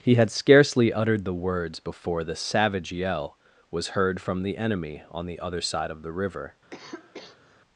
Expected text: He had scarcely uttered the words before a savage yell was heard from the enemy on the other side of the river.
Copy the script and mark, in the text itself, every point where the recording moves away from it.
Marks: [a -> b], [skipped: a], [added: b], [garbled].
He had scarcely uttered the words before [a -> the] savage yell was heard from the enemy on the other side of the river.